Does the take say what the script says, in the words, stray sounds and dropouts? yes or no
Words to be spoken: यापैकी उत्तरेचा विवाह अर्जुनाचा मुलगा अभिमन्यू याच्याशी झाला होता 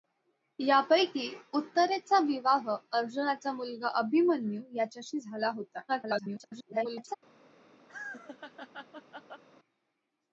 no